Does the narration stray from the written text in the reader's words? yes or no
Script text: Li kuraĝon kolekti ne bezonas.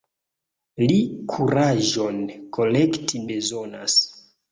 yes